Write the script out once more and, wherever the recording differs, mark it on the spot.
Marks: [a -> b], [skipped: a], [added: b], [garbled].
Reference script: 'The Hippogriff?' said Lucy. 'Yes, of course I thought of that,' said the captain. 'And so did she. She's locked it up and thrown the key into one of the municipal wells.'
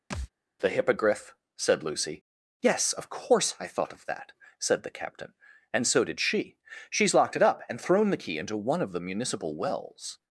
'The Hippogriff?' said Lucy. 'Yes, of course I thought of that,' said the captain. 'And so did she. She's locked it up and thrown the key into one of the municipal wells.'